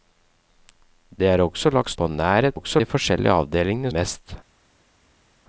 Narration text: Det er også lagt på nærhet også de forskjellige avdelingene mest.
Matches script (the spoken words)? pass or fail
pass